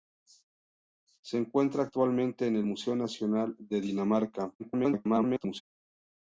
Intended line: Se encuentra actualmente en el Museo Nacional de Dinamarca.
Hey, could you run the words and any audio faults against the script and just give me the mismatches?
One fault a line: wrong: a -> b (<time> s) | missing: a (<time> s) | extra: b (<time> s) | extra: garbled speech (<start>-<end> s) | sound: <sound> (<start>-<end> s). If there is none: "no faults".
extra: garbled speech (4.6-5.6 s)